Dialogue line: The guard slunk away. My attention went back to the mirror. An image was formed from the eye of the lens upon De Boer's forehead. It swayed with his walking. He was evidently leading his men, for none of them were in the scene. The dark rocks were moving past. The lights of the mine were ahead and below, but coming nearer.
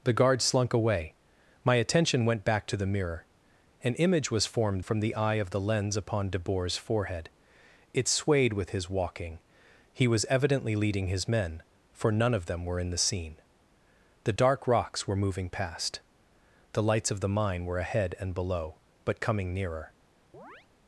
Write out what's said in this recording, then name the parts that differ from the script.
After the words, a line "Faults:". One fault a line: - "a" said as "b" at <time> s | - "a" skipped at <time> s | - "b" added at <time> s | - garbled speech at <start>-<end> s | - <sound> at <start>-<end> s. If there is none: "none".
The guard slunk away. My attention went back to the mirror. An image was formed from the eye of the lens upon De Boer's forehead. It swayed with his walking. He was evidently leading his men, for none of them were in the scene. The dark rocks were moving past. The lights of the mine were ahead and below, but coming nearer.
Faults:
- chirp at 20.3-20.7 s